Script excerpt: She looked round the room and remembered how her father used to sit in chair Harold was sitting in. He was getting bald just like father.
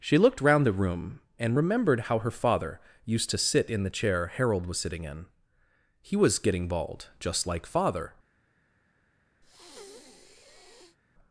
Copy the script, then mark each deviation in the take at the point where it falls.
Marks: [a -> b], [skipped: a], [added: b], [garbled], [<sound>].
She looked round the room and remembered how her father used to sit in [added: the] chair Harold was sitting in. He was getting bald just like father. [breath]